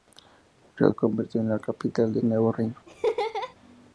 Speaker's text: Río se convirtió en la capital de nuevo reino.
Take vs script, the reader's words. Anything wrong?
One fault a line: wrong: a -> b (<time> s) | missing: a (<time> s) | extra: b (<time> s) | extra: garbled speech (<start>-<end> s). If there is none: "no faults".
no faults